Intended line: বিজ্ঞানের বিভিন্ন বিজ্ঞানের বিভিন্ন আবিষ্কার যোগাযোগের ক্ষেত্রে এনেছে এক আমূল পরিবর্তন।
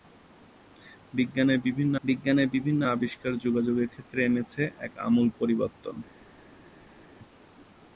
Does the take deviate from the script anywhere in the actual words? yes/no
no